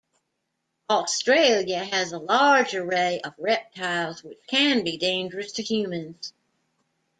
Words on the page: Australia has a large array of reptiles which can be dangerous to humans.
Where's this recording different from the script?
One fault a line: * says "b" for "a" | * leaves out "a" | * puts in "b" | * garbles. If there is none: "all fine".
all fine